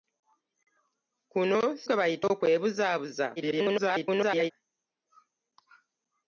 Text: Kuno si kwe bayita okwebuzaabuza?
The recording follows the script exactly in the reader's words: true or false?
false